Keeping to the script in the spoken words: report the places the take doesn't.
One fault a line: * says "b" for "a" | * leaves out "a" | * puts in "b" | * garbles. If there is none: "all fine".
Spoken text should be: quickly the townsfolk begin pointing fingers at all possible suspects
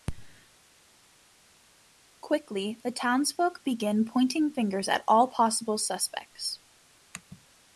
all fine